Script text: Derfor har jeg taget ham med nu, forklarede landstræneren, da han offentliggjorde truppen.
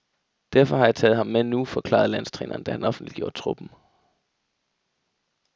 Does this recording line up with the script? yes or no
yes